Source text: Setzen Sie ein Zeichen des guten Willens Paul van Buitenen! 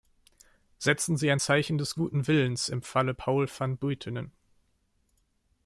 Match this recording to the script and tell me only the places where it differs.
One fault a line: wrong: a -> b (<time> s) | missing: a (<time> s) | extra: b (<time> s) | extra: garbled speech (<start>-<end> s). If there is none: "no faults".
extra: im Falle (2.7 s)